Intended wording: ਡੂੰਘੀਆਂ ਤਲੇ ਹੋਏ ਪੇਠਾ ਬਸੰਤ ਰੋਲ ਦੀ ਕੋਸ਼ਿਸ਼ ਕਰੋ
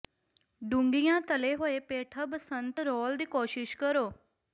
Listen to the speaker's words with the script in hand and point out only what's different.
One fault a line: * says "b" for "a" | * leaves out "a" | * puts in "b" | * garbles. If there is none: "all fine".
all fine